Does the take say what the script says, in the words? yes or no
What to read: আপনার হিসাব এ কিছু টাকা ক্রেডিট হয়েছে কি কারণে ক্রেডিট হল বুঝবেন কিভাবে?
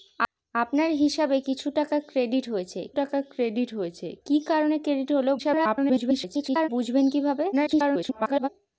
no